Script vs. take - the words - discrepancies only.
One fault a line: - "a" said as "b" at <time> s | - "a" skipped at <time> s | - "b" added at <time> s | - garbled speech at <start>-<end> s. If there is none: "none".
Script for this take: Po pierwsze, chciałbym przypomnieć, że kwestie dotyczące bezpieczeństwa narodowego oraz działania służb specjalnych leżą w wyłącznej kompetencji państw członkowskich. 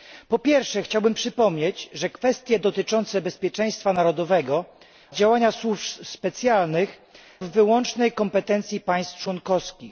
- "oraz" skipped at 4.7 s
- "leżą" skipped at 7.0 s